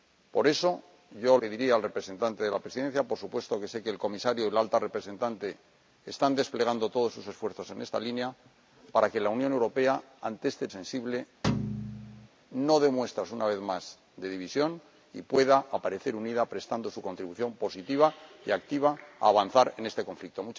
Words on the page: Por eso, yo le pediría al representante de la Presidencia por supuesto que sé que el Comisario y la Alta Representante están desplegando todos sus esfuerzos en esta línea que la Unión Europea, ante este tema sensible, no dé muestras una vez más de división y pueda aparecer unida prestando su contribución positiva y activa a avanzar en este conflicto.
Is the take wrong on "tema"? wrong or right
wrong